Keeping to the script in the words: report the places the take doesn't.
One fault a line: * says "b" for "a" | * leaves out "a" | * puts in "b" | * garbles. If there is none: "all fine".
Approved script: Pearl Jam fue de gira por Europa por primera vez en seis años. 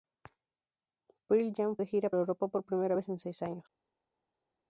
* leaves out "fue"
* leaves out "por"